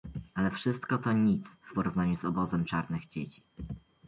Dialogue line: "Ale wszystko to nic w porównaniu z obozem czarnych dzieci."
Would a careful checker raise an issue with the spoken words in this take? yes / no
no